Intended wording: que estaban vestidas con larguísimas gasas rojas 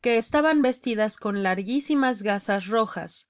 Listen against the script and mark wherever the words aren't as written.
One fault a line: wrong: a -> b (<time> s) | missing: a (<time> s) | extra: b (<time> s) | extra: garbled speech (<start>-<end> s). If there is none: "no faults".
no faults